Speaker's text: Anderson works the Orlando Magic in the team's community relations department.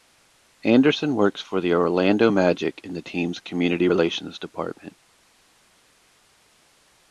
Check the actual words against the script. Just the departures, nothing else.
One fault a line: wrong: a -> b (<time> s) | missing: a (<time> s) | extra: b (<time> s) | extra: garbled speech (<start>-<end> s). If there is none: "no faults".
extra: for (1.4 s)